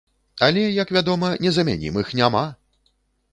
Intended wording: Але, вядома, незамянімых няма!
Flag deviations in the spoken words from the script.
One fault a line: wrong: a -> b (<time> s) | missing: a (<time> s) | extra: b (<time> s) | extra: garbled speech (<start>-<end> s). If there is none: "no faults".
extra: як (0.8 s)